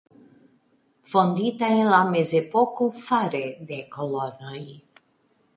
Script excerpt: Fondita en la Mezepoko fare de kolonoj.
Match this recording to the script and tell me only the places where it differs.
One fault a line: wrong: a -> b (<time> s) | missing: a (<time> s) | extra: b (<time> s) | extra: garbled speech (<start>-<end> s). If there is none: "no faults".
no faults